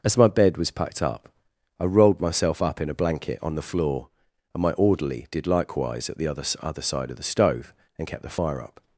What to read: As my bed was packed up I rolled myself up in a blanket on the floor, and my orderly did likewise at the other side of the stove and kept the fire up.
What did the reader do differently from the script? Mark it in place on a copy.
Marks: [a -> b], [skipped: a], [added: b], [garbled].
As my bed was packed up I rolled myself up in a blanket on the floor, and my orderly did likewise at the other [added: other] side of the stove and kept the fire up.